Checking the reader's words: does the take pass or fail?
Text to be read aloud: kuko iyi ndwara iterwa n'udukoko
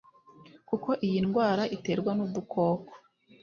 pass